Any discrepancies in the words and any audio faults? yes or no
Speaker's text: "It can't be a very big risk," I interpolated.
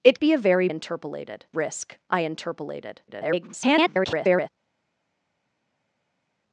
yes